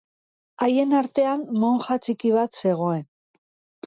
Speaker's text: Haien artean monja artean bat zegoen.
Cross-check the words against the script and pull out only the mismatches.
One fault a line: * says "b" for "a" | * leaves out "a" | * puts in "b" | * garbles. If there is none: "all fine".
* says "txiki" for "artean"